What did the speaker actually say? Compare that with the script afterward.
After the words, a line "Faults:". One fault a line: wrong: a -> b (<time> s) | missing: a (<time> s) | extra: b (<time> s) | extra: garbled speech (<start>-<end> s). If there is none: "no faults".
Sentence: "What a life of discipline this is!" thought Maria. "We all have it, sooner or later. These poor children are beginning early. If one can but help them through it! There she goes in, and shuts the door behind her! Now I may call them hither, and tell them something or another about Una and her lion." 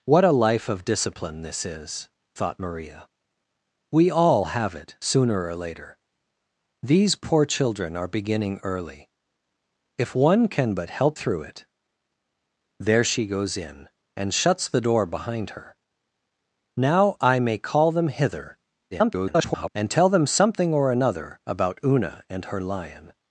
"What a life of discipline this is!" thought Maria. "We all have it, sooner or later. These poor children are beginning early. If one can but help through it! There she goes in, and shuts the door behind her! Now I may call them hither, [garbled] and tell them something or another about Una and her lion."
Faults:
missing: them (11.2 s)
extra: garbled speech (18.9-19.7 s)